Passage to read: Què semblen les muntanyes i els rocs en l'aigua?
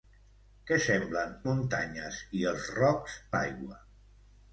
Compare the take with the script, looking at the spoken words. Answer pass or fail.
fail